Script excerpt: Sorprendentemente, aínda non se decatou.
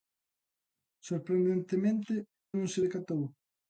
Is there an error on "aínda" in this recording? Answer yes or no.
yes